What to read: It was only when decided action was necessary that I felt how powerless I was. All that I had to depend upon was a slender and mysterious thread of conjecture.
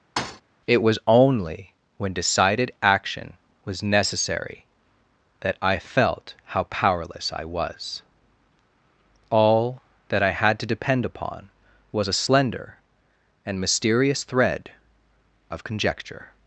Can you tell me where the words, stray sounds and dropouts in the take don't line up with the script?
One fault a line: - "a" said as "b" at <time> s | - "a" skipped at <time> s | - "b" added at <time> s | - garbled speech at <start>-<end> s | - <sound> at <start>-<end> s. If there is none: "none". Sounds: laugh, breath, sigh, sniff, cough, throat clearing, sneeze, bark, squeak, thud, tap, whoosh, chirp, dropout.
- thud at 0.2-0.4 s